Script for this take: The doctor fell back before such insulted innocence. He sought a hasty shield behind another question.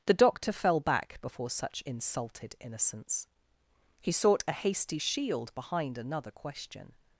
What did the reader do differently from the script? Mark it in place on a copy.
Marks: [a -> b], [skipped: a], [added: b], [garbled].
The doctor fell back before such insulted innocence. He sought a hasty shield behind another question.